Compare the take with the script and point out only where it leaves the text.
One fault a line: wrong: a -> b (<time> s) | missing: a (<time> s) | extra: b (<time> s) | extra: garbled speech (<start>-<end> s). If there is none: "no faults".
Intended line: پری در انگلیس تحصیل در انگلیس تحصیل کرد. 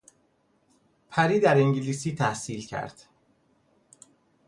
missing: در انگلیس تحصیل (2.7 s)